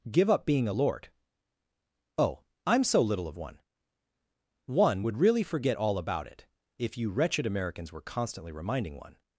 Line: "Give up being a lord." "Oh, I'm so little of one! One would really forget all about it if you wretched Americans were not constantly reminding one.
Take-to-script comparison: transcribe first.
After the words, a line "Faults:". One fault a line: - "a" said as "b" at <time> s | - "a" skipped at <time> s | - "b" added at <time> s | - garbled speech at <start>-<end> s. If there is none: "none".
"Give up being a lord." "Oh, I'm so little of one! One would really forget all about it if you wretched Americans were constantly reminding one.
Faults:
- "not" skipped at 8.0 s